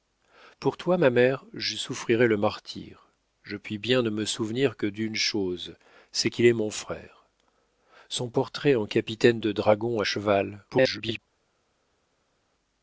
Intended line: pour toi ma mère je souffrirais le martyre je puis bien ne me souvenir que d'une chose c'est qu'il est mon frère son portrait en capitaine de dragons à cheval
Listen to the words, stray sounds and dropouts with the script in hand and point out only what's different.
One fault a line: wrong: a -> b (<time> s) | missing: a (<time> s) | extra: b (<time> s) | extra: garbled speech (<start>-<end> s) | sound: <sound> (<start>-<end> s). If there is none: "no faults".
extra: garbled speech (10.7-11.2 s)